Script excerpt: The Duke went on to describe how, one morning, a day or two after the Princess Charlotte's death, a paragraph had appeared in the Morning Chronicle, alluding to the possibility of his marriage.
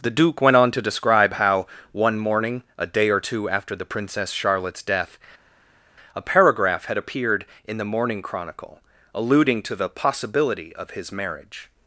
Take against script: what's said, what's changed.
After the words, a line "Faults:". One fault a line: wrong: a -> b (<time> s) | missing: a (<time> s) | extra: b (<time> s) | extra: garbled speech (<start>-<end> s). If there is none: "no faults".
The Duke went on to describe how, one morning, a day or two after the Princess Charlotte's death, a paragraph had appeared in the Morning Chronicle, alluding to the possibility of his marriage.
Faults:
no faults